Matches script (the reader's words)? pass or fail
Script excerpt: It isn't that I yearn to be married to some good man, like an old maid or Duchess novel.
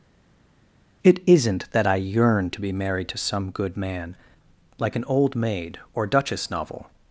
pass